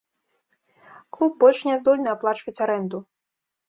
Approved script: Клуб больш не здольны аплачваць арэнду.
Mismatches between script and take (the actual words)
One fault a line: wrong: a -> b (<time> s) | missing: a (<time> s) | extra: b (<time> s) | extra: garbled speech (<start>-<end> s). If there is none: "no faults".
no faults